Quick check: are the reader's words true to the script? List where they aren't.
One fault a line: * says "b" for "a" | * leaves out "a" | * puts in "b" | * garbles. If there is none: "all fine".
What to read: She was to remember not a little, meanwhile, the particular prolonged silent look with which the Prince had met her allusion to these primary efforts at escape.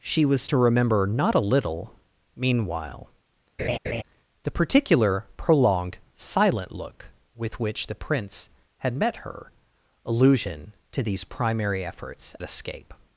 * leaves out "at"